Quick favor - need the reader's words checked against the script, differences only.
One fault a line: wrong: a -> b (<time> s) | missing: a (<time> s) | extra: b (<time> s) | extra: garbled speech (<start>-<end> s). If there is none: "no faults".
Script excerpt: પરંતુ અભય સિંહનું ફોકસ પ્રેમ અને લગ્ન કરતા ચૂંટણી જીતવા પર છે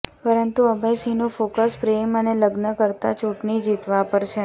no faults